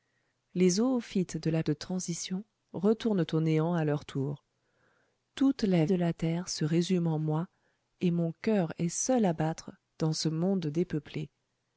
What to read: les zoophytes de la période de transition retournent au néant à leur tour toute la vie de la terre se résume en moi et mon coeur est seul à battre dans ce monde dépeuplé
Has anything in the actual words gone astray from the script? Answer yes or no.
yes